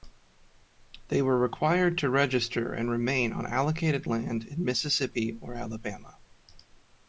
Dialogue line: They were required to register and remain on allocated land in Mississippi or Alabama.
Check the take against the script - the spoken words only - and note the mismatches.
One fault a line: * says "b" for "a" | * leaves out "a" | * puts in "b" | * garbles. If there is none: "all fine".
all fine